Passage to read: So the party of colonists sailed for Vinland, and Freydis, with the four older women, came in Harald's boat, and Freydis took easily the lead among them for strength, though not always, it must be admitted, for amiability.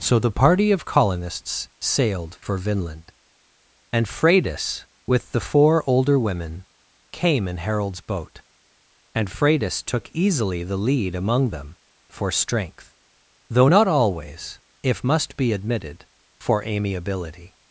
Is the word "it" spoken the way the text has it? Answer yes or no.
no